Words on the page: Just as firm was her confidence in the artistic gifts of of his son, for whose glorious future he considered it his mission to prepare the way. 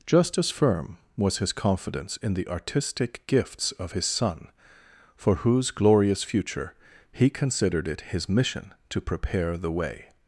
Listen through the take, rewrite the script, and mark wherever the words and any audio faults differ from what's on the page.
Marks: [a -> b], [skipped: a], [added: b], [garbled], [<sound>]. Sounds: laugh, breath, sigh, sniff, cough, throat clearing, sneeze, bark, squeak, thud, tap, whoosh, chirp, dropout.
Just as firm was [her -> his] confidence in the artistic gifts of [skipped: of] his son, for whose glorious future he considered it his mission to prepare the way.